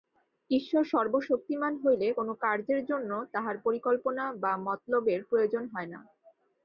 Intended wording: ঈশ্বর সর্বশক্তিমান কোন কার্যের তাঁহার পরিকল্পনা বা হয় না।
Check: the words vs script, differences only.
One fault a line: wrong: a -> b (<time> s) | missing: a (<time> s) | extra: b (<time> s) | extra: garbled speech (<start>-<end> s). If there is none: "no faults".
extra: হইলে (1.8 s)
extra: জন্য (2.8 s)
extra: মতলবের প্রয়োজন (4.6 s)